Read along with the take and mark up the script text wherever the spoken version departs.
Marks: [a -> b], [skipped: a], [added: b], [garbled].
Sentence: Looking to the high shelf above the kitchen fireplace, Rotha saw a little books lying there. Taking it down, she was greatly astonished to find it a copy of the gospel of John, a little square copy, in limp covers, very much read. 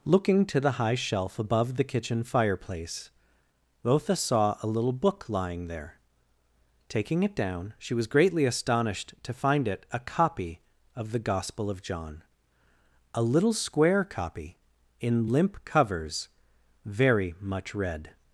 Looking to the high shelf above the kitchen fireplace, Rotha saw a little [books -> book] lying there. Taking it down, she was greatly astonished to find it a copy of the gospel of John, a little square copy, in limp covers, very much read.